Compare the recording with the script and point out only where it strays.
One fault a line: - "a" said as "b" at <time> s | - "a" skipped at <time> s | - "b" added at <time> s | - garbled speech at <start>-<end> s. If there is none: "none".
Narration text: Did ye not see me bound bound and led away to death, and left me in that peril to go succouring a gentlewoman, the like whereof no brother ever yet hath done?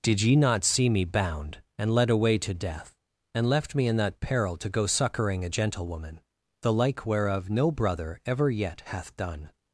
- "bound" skipped at 1.6 s